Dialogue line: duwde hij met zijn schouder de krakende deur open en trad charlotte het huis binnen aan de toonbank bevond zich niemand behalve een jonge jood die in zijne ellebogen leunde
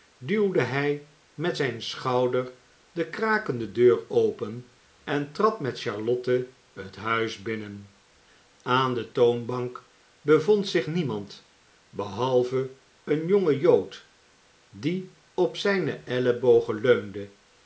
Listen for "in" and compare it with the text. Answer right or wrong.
wrong